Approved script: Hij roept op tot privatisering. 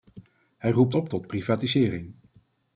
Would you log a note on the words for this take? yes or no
no